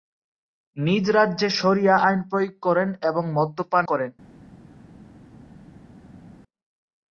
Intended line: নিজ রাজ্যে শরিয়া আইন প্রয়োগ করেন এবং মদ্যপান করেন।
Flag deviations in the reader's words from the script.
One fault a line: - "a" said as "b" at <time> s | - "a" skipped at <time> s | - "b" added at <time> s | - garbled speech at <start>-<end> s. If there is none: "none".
none